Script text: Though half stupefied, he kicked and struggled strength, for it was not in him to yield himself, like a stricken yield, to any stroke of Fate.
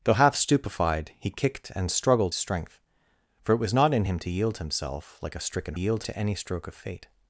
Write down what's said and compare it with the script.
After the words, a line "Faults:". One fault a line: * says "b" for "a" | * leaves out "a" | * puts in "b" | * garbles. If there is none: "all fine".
Though half stupefied, he kicked and struggled strength, for it was not in him to yield himself, like a stricken yield, to any stroke of Fate.
Faults:
all fine